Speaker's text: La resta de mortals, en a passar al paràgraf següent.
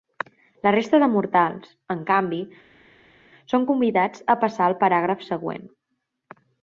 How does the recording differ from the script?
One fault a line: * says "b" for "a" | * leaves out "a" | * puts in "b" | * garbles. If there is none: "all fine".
* puts in "canvi són convidats"